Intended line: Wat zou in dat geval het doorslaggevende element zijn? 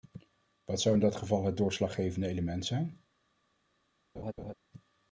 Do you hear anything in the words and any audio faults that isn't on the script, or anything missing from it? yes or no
yes